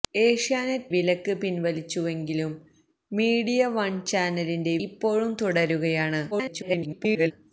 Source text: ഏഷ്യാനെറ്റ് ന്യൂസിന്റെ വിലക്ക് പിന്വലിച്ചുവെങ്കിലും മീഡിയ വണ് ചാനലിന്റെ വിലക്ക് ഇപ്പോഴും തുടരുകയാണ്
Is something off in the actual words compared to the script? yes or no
yes